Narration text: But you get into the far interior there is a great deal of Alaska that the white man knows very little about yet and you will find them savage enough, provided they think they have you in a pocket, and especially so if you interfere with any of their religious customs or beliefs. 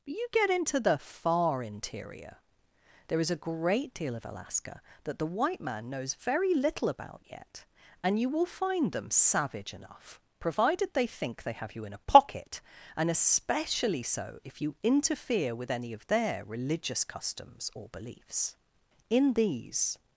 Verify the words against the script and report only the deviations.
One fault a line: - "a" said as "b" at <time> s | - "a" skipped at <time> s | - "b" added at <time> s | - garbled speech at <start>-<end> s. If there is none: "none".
- "In these" added at 19.1 s